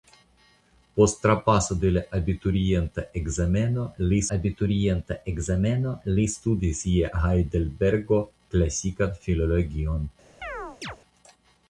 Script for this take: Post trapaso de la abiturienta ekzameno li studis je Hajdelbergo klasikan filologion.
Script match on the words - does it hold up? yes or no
no